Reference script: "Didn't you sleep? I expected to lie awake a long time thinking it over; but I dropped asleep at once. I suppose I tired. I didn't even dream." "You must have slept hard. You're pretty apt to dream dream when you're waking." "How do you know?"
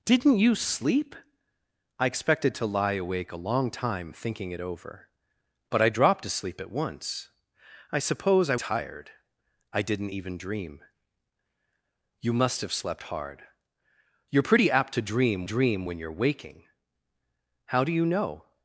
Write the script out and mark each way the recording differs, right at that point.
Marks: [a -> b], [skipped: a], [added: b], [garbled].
"Didn't you sleep? I expected to lie awake a long time thinking it over; but I dropped asleep at once. I suppose I tired. I didn't even dream." "You must have slept hard. You're pretty apt to dream dream when you're waking." "How do you know?"